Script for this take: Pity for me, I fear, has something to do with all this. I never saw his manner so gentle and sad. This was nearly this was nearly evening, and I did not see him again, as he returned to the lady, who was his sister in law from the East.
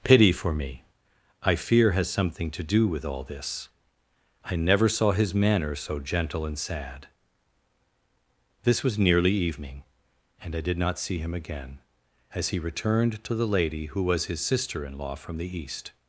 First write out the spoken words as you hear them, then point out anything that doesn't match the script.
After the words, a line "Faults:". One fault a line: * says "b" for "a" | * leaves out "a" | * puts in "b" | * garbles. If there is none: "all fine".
Pity for me, I fear, has something to do with all this. I never saw his manner so gentle and sad. This was nearly evening, and I did not see him again, as he returned to the lady, who was his sister in law from the East.
Faults:
* leaves out "this was nearly"